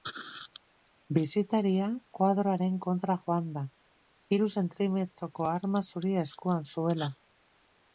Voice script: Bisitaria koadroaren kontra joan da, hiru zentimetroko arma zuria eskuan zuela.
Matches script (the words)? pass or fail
pass